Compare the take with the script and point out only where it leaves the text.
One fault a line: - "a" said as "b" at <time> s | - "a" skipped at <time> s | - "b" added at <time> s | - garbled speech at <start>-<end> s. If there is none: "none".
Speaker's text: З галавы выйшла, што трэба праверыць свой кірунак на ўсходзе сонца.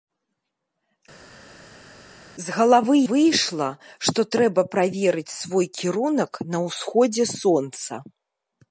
none